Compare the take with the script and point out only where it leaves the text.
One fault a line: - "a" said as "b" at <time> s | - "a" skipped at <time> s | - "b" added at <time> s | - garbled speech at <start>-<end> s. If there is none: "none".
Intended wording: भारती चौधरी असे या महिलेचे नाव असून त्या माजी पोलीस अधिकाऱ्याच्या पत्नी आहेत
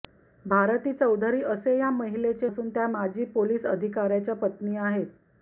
- "नाव" skipped at 2.5 s